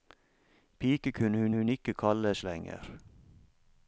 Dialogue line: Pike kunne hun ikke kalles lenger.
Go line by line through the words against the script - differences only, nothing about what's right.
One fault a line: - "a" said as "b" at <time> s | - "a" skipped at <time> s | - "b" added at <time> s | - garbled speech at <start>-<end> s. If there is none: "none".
- "hun" added at 1.6 s